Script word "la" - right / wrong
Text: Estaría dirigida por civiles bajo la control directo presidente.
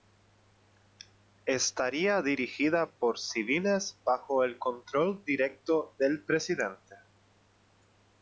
wrong